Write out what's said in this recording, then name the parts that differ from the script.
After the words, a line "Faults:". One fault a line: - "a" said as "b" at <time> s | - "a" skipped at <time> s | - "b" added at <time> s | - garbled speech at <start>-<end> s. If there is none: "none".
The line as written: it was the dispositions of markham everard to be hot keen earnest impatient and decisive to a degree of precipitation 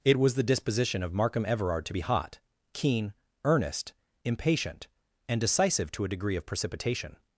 it was the disposition of markham everard to be hot keen earnest impatient and decisive to a degree of precipitation
Faults:
- "dispositions" said as "disposition" at 0.4 s